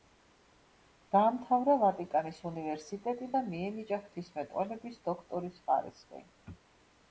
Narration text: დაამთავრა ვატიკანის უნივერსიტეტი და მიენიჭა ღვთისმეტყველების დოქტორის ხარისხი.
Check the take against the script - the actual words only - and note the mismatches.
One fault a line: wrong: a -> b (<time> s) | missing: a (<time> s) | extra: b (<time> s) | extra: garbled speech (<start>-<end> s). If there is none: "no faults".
no faults